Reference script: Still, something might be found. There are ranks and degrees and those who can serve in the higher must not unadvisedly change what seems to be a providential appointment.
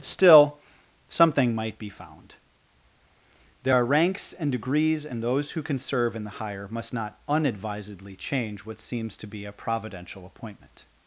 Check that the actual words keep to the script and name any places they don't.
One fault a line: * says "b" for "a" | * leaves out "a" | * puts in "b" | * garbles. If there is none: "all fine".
all fine